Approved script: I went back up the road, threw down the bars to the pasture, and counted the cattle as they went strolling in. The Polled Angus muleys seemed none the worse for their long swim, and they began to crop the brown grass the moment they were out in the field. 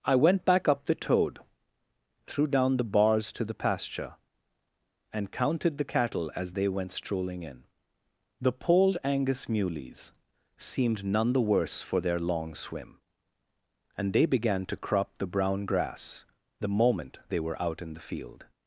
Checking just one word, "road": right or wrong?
wrong